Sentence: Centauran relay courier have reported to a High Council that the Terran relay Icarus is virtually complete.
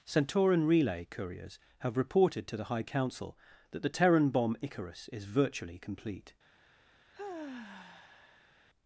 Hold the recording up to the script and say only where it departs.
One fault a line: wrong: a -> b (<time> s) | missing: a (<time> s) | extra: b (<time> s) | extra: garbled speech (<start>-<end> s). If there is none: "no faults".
wrong: courier -> couriers (1.1 s)
wrong: a -> the (2.6 s)
wrong: relay -> bomb (4.3 s)